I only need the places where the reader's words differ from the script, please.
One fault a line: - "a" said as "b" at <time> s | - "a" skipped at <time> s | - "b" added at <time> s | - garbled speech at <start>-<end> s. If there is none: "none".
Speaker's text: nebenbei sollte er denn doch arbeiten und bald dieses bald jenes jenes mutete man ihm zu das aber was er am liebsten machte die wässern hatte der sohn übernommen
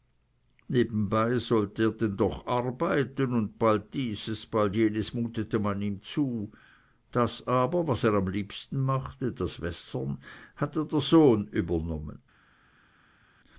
- "jenes" skipped at 5.1 s
- "die" said as "das" at 9.3 s